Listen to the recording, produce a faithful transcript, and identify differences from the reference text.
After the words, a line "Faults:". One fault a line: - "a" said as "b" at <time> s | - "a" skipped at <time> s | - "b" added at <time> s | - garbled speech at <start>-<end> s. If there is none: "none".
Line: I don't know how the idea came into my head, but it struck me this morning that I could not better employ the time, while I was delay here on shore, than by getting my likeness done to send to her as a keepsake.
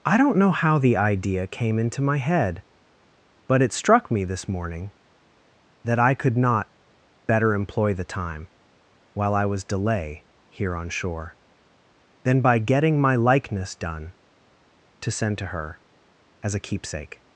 I don't know how the idea came into my head, but it struck me this morning that I could not better employ the time, while I was delay here on shore, than by getting my likeness done to send to her as a keepsake.
Faults:
none